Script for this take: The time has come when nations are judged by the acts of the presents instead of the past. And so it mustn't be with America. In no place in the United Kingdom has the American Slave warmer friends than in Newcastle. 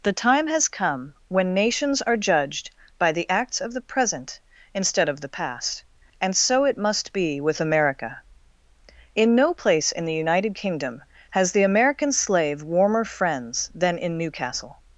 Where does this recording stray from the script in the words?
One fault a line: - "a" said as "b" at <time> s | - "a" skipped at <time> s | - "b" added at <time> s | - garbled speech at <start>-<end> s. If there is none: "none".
- "presents" said as "present" at 3.8 s
- "mustn't" said as "must" at 6.8 s